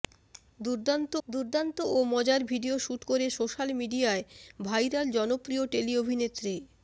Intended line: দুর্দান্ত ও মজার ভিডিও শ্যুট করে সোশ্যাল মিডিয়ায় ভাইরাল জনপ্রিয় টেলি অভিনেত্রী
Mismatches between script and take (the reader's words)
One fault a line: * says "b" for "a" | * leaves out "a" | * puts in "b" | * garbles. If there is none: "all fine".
* puts in "দুর্দান্ত"